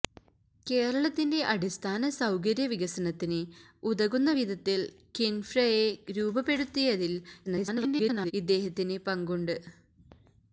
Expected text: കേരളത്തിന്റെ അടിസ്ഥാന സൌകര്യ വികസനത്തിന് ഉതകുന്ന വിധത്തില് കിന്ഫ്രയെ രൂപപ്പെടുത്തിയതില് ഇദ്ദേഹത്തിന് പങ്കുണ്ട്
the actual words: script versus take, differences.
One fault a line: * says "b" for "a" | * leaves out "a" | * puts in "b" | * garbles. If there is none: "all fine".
* garbles